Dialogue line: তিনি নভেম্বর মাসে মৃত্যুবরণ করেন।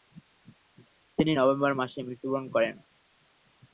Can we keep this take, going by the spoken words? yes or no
yes